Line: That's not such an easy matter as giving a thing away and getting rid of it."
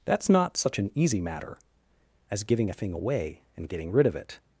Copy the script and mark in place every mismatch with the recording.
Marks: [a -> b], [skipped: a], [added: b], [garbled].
That's not such an easy matter as giving a thing away and getting rid of it."